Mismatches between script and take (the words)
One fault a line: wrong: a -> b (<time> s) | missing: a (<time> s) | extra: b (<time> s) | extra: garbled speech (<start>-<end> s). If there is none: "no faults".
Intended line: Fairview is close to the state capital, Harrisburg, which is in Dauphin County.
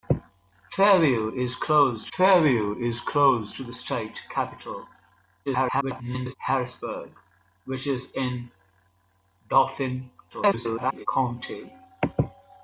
extra: fairview is close (2.1 s)
extra: garbled speech (5.5-6.4 s)
extra: garbled speech (10.3-11.1 s)